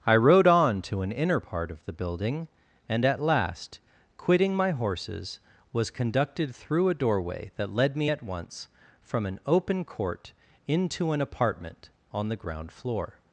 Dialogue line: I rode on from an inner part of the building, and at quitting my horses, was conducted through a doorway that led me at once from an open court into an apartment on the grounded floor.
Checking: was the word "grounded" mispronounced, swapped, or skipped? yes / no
yes